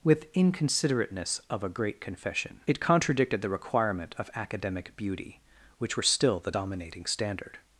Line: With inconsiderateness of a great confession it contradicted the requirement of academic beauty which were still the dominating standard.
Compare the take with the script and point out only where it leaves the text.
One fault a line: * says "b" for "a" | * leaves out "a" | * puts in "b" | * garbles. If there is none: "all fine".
all fine